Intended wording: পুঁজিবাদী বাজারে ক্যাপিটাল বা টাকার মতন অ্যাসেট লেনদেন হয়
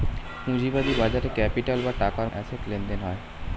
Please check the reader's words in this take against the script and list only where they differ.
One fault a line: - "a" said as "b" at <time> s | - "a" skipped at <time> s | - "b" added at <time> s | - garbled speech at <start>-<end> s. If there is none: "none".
- "মতন" skipped at 2.3 s